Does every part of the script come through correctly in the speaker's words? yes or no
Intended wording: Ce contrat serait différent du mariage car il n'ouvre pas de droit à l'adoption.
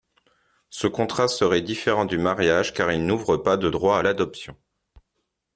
yes